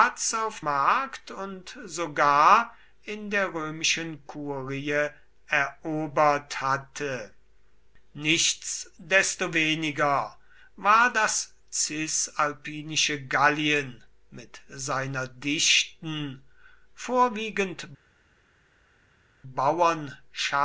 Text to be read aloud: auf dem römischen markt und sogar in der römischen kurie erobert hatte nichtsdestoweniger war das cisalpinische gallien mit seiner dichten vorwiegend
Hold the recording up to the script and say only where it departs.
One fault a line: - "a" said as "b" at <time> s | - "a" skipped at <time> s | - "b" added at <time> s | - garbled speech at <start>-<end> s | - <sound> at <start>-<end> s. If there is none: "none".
- "dem römischen" skipped at 0.6 s